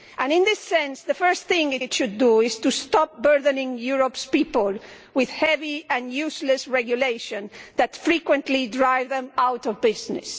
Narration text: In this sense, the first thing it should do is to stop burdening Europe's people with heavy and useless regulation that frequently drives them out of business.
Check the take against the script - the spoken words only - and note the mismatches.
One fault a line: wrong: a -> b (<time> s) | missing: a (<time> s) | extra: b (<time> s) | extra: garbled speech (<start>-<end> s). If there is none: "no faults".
extra: it (1.8 s)